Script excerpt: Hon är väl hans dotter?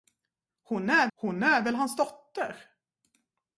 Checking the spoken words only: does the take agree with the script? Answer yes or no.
no